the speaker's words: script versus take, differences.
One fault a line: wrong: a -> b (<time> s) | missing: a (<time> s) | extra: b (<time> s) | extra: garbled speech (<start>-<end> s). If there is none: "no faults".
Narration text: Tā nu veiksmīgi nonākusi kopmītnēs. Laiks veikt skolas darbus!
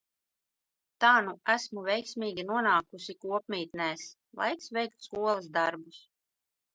extra: esmu (1.6 s)